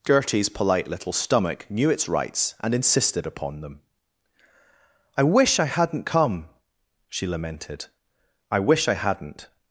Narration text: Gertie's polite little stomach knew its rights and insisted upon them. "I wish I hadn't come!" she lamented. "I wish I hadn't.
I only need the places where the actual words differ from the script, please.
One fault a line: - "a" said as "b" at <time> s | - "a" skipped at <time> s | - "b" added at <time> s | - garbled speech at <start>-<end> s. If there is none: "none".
none